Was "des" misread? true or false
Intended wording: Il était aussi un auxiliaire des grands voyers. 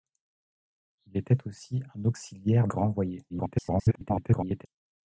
true